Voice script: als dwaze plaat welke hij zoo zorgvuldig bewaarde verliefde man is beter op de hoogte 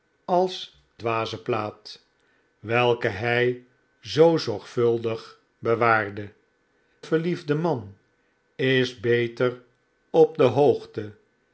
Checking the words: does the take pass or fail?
pass